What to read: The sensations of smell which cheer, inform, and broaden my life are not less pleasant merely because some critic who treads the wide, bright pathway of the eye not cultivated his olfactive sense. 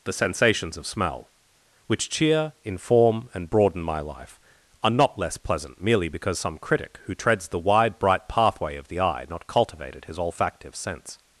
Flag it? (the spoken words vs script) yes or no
no